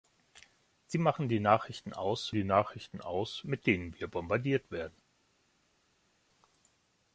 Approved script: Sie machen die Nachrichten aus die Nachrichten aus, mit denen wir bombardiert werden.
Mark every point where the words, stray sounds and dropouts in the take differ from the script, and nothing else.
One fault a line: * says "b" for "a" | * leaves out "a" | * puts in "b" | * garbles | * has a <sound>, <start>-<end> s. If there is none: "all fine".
all fine